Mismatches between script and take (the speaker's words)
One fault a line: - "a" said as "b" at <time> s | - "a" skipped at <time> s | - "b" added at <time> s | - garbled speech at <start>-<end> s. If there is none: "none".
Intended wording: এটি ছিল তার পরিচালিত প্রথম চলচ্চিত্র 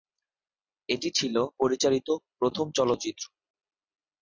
- "তার" skipped at 1.4 s